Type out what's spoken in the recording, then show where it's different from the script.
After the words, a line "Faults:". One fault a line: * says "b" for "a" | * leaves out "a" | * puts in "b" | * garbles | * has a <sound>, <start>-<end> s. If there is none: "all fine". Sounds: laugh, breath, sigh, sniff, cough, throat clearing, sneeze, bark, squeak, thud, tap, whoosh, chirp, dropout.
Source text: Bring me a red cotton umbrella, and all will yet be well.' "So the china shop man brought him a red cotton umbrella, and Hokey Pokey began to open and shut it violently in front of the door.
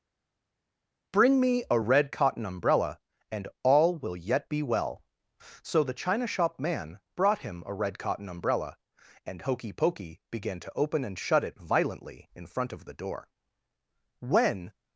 Bring me a red cotton umbrella, and all will yet be well.' "So the china shop man brought him a red cotton umbrella, and Hokey Pokey began to open and shut it violently in front of the door. When
Faults:
* puts in "When"